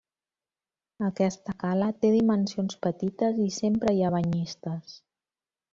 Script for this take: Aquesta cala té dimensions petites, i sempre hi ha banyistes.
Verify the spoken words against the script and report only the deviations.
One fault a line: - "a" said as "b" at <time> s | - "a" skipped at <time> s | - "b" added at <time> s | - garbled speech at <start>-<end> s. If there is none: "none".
none